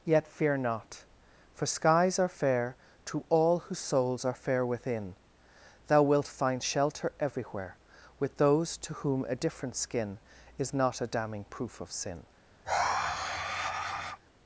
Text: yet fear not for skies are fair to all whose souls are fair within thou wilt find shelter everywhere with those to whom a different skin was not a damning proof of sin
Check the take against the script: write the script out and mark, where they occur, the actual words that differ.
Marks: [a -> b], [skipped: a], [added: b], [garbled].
yet fear not for skies are fair to all whose souls are fair within thou wilt find shelter everywhere with those to whom a different skin [was -> is] not a damning proof of sin